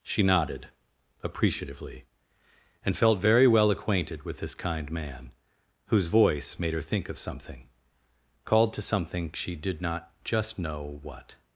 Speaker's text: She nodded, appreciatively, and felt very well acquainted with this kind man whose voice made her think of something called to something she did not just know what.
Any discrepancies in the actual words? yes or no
no